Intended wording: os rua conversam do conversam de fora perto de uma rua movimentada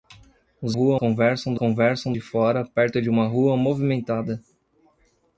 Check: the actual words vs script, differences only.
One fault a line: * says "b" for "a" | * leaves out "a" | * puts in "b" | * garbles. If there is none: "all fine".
all fine